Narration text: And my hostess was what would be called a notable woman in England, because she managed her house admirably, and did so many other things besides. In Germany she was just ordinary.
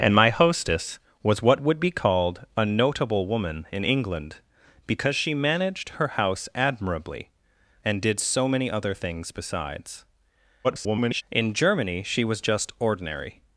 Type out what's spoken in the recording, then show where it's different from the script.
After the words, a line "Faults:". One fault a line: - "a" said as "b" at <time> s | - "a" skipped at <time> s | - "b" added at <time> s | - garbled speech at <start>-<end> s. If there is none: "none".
And my hostess was what would be called a notable woman in England, because she managed her house admirably, and did so many other things besides. [garbled] In Germany she was just ordinary.
Faults:
- garbled speech at 10.6-11.2 s